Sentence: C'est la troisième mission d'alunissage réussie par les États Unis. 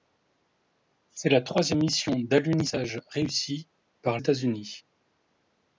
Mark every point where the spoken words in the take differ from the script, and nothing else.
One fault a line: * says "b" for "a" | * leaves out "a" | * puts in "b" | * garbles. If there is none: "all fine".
* leaves out "les"